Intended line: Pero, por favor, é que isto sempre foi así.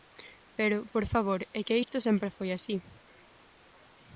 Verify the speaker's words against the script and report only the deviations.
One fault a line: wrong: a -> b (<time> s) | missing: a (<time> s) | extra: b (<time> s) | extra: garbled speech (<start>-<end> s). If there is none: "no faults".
no faults